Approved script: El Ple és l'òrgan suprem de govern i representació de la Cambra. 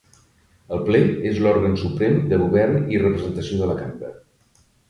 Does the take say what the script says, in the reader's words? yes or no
yes